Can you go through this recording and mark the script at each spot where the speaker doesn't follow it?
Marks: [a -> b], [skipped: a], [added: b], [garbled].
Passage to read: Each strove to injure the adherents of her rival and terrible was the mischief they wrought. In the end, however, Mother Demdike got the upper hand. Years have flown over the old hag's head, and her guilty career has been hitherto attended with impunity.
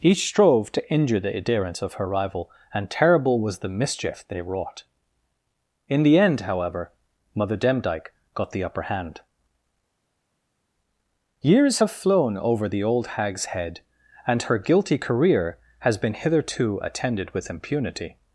Each strove to injure the adherents of her rival and terrible was the mischief they wrought. In the end, however, Mother Demdike got the upper hand. Years have flown over the old hag's head, and her guilty career has been hitherto attended with impunity.